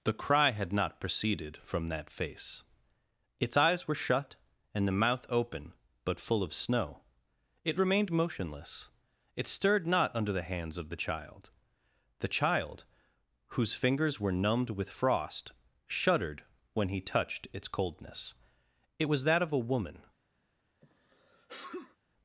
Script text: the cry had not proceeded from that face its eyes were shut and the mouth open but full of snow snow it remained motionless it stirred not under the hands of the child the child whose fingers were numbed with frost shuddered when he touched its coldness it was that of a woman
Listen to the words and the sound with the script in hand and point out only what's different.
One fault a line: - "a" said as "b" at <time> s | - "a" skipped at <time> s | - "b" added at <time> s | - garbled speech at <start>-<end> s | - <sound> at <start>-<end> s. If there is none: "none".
- "snow" skipped at 7.0 s
- sneeze at 20.8-22.0 s